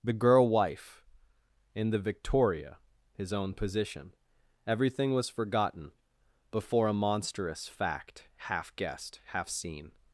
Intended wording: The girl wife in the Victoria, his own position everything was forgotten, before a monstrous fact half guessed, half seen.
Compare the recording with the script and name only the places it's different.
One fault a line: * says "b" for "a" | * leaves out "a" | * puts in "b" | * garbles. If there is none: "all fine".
all fine